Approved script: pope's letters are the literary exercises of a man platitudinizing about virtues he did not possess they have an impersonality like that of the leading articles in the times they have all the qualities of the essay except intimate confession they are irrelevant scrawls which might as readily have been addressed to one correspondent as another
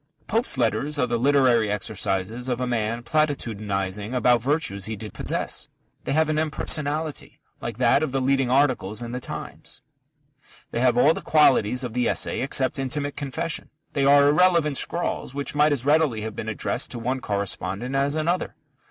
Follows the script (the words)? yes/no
no